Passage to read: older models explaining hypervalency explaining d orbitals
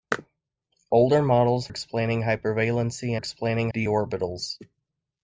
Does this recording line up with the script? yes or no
yes